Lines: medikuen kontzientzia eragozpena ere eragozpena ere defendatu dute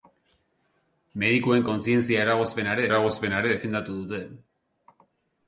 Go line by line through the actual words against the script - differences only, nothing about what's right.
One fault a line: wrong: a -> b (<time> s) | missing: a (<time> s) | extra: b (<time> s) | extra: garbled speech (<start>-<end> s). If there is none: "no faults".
no faults